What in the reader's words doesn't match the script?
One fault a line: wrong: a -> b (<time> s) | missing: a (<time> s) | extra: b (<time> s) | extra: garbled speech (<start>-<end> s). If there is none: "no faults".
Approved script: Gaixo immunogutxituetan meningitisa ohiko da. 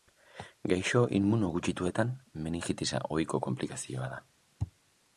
extra: konplikazioa (3.5 s)